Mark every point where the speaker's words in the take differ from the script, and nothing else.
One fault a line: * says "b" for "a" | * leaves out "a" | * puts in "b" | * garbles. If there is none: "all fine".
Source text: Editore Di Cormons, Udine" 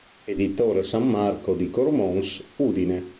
* puts in "San Marco"